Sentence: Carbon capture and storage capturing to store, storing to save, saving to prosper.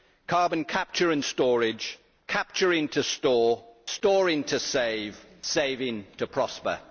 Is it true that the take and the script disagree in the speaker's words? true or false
false